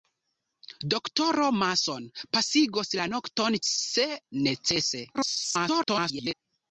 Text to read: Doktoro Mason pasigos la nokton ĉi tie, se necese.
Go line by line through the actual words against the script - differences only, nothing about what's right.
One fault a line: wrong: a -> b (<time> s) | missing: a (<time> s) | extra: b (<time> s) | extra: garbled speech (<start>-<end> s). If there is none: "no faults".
missing: ĉi tie (3.6 s)
extra: garbled speech (5.1-6.3 s)